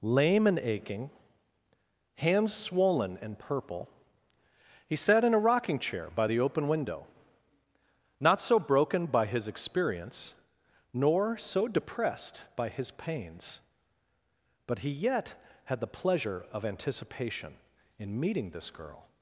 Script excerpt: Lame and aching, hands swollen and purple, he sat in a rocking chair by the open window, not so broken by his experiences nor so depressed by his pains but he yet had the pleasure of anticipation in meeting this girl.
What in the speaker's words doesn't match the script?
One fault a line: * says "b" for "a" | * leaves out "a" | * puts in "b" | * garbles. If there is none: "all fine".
* says "experience" for "experiences"